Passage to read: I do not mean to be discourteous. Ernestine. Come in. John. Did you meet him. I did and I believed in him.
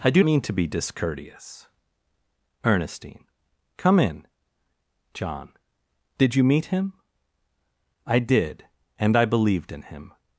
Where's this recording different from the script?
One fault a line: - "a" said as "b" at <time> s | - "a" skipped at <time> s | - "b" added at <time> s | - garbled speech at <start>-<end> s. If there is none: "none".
- "not" skipped at 0.2 s